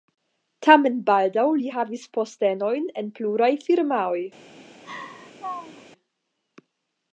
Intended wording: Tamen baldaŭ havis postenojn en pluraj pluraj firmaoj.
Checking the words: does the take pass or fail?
fail